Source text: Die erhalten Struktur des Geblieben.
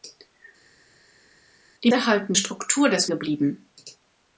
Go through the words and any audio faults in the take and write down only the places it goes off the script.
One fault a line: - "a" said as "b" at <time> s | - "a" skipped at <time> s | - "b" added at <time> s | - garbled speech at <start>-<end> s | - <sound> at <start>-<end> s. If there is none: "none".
none